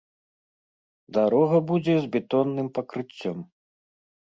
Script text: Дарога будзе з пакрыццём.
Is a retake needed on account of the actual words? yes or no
yes